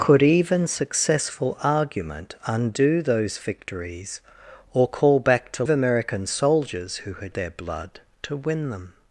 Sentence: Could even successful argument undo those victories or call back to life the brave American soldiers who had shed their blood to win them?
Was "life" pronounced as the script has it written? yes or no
no